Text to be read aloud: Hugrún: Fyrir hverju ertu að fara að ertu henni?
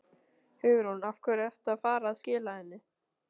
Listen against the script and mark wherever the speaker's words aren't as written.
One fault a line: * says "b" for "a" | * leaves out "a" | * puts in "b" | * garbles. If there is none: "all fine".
* says "Af" for "Fyrir"
* says "skila" for "ertu"